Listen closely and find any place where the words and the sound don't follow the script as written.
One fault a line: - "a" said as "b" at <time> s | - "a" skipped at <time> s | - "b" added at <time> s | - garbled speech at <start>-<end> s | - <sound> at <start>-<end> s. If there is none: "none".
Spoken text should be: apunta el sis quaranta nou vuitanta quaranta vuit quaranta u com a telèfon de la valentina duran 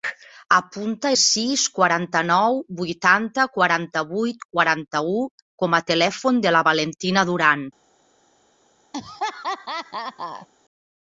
- "el" skipped at 1.1 s
- laugh at 8.9-10.5 s